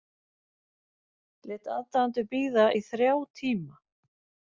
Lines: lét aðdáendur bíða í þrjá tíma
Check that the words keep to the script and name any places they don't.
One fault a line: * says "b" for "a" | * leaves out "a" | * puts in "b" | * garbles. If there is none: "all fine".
all fine